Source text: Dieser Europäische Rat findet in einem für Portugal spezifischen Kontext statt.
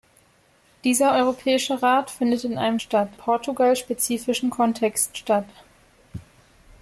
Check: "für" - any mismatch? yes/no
yes